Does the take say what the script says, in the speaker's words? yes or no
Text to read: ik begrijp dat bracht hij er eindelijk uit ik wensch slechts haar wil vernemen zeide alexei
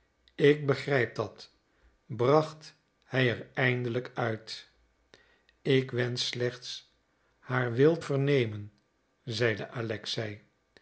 yes